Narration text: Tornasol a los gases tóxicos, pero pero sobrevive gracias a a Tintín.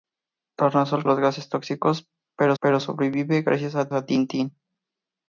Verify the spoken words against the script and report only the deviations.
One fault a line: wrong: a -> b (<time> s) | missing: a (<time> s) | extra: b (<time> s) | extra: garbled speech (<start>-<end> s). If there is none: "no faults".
no faults